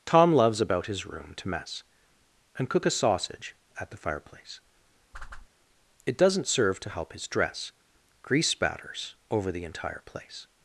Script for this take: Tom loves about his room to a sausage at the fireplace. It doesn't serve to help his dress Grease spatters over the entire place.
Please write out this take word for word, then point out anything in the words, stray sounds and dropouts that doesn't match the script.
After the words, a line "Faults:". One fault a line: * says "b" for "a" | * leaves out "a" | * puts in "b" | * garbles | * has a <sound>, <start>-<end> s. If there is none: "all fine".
Tom loves about his room to mess, And cook a sausage at the fireplace. It doesn't serve to help his dress Grease spatters over the entire place.
Faults:
* puts in "mess And cook"
* has a whoosh, 5.1-5.5 s